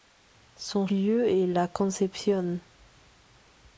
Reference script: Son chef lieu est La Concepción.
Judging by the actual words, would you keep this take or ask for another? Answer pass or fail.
fail